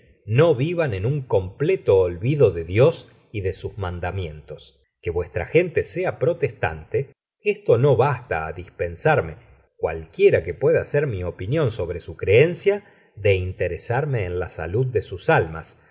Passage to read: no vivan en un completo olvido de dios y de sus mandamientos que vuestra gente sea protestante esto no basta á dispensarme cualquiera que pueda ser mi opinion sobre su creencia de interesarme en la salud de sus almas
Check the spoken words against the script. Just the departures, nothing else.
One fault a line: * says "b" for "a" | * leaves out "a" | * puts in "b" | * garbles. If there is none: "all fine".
all fine